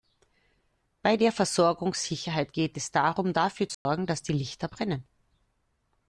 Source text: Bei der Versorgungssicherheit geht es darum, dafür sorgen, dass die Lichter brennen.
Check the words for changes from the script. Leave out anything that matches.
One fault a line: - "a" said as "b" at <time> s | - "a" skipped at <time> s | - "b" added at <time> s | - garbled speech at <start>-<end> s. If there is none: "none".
none